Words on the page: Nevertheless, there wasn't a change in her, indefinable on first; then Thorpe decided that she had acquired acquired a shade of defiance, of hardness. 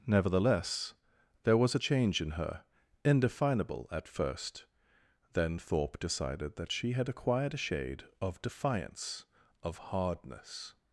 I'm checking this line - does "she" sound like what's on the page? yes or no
yes